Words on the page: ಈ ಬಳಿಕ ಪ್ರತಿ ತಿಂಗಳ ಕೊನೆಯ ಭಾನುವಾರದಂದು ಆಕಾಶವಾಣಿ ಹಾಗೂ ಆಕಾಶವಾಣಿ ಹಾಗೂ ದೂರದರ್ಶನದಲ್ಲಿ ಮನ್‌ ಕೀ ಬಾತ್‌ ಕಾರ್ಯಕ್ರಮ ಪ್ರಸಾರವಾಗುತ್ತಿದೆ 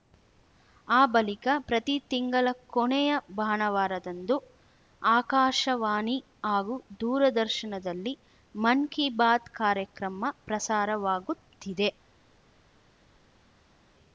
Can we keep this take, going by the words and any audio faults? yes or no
no